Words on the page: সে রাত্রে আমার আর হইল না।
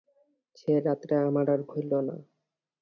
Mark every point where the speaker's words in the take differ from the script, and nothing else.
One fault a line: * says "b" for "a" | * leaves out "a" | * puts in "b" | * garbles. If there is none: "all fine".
all fine